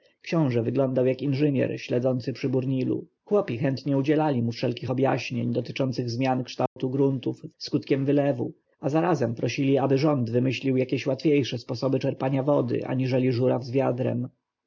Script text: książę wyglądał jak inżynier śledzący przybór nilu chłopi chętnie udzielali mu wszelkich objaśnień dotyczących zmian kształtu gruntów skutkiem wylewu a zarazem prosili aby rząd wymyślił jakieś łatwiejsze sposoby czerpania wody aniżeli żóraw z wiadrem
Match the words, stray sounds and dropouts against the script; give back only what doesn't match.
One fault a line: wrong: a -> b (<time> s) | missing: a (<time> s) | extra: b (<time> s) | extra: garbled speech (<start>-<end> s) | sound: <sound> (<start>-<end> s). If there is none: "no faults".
sound: dropout (6.7-6.8 s)